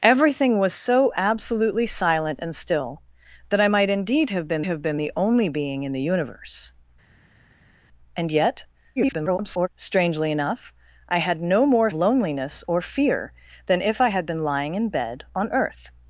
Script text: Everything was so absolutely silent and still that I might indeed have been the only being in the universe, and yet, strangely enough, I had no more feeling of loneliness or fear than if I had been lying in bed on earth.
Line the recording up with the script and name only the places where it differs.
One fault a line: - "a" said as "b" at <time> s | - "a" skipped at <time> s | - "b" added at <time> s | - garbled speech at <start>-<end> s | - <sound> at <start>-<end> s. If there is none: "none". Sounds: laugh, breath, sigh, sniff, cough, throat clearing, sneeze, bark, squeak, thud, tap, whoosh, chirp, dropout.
- "have been" added at 4.6 s
- garbled speech at 9.0-9.7 s
- "feeling of" skipped at 11.9 s